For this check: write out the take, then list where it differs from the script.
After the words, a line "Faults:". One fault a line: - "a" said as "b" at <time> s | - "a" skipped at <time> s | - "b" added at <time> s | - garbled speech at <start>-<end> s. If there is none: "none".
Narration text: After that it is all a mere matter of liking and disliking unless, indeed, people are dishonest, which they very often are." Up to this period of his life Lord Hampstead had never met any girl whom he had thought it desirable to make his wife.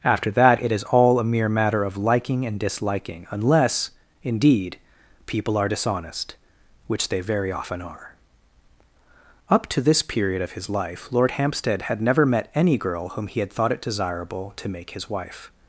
After that it is all a mere matter of liking and disliking unless, indeed, people are dishonest, which they very often are." Up to this period of his life Lord Hampstead had never met any girl whom he had thought it desirable to make his wife.
Faults:
none